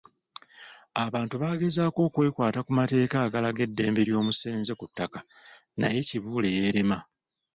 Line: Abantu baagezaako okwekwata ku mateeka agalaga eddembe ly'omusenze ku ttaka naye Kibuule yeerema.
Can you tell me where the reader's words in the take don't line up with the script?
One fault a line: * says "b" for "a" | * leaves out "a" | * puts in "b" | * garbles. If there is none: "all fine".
all fine